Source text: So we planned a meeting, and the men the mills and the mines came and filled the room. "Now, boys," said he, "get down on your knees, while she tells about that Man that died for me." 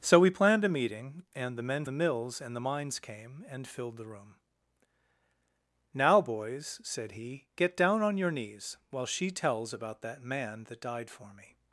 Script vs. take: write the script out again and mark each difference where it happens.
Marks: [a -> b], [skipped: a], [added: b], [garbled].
So we planned a meeting, and the men the mills and the mines came and filled the room. "Now, boys," said he, "get down on your knees, while she tells about that Man that died for me."